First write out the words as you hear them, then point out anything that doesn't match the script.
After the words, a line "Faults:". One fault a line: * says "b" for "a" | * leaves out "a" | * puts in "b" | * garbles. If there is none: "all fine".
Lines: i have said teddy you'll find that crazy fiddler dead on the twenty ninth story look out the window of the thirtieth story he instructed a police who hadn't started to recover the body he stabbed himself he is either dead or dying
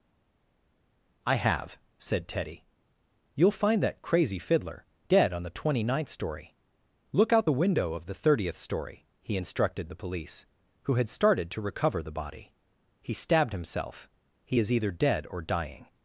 i have said teddy you'll find that crazy fiddler dead on the twenty ninth story look out the window of the thirtieth story he instructed the police who had started to recover the body he stabbed himself he is either dead or dying
Faults:
* says "the" for "a"
* says "had" for "hadn't"